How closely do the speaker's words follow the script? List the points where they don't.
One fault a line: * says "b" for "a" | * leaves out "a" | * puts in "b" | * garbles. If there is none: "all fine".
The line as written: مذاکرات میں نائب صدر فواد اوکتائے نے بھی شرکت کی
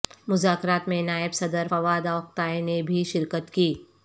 all fine